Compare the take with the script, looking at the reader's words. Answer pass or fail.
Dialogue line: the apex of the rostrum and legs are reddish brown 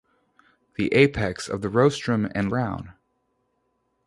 fail